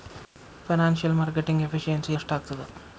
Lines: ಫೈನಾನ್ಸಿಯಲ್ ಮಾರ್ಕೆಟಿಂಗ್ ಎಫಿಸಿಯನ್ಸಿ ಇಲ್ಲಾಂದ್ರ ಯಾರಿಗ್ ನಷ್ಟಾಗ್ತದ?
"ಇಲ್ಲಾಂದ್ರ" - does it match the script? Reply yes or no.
no